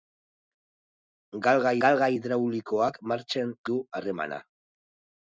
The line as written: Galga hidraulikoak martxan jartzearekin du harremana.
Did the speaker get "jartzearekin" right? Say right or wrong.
wrong